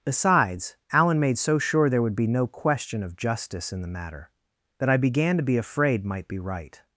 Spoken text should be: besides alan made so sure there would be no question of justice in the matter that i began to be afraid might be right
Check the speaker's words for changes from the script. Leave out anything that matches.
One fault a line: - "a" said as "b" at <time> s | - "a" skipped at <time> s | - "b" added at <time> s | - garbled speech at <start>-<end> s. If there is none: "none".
none